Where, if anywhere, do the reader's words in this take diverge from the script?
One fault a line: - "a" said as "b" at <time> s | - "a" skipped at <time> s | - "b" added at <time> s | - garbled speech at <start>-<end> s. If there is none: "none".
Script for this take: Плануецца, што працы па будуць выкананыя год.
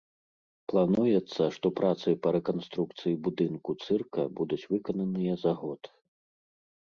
- "рэканструкцыі будынку цырка" added at 2.4 s
- "за" added at 5.4 s